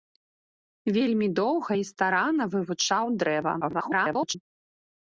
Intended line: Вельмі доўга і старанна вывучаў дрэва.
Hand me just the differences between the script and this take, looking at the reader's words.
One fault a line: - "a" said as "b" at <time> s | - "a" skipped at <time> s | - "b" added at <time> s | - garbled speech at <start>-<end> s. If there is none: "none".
- garbled speech at 3.6-4.4 s